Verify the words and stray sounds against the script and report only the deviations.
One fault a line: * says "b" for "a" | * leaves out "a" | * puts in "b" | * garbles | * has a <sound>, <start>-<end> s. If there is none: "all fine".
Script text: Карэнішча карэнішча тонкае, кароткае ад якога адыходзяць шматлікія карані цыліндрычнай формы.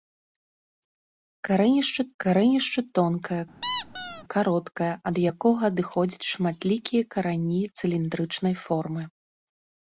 * has a squeak, 3.6-4.2 s